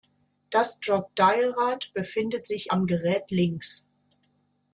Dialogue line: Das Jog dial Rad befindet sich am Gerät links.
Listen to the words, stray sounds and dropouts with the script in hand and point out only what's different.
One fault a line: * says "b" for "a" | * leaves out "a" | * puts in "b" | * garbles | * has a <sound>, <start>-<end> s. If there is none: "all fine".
all fine